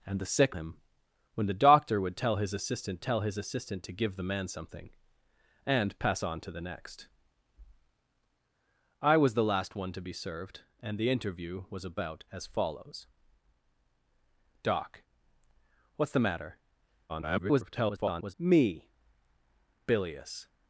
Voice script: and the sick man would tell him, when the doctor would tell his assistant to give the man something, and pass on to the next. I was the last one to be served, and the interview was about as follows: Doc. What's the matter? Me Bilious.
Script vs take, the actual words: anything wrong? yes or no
yes